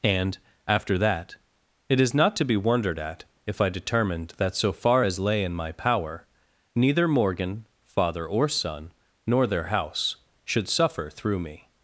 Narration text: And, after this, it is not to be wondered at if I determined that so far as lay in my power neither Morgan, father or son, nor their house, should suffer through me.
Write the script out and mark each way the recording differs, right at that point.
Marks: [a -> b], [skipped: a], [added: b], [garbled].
And, after [this, -> that] it is not to be wondered at if I determined that so far as lay in my power neither Morgan, father or son, nor their house, should suffer through me.